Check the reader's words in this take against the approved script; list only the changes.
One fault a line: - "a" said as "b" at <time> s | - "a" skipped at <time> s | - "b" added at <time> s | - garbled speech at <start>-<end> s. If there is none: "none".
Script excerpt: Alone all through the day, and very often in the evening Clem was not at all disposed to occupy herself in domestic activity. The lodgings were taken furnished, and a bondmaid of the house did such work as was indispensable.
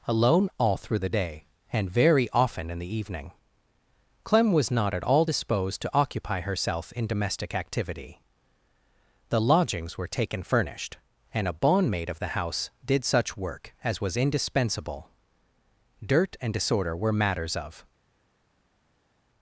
- "Dirt and disorder were matters of" added at 16.0 s